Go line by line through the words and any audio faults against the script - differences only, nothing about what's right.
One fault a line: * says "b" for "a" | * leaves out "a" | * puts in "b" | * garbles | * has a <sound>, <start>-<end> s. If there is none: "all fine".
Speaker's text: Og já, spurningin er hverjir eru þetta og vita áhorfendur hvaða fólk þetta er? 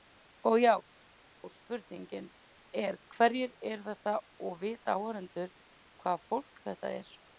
all fine